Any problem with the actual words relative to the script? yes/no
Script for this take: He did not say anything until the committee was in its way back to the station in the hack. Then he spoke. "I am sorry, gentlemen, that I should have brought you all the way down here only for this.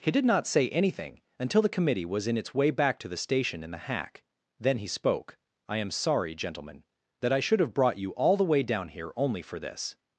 no